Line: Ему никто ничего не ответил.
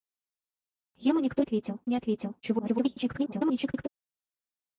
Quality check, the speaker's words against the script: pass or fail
fail